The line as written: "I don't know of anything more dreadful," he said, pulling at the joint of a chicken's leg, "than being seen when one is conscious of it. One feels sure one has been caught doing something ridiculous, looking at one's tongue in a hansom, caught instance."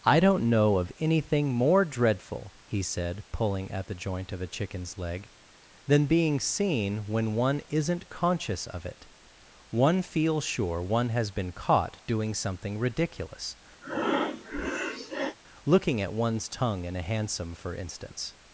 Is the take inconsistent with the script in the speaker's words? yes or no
yes